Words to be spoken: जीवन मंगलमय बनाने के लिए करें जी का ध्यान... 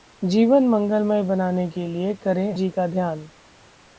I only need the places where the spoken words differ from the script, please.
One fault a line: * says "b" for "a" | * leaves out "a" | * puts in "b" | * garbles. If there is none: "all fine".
all fine